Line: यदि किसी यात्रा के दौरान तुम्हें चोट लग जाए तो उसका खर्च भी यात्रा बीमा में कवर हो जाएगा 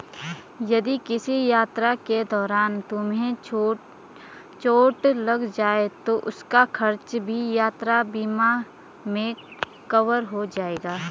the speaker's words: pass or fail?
pass